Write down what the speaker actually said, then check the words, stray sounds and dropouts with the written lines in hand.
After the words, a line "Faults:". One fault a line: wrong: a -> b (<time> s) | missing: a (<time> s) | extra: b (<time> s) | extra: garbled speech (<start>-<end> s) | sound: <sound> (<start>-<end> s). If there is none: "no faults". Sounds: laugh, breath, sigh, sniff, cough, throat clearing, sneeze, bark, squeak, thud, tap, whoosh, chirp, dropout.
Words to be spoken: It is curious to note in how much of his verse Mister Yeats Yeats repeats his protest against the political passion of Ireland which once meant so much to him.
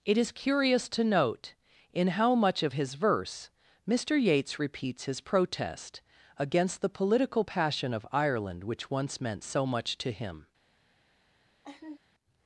It is curious to note in how much of his verse Mister Yeats repeats his protest against the political passion of Ireland which once meant so much to him.
Faults:
missing: Yeats (4.6 s)
sound: laugh (11.6-12.0 s)